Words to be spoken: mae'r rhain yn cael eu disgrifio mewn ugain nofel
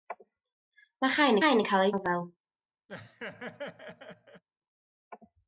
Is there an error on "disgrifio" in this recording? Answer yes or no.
yes